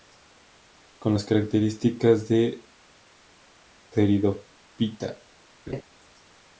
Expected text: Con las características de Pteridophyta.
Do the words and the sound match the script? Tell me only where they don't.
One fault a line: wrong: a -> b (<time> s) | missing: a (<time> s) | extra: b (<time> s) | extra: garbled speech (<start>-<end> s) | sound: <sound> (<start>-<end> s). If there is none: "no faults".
sound: laugh (5.7-5.8 s)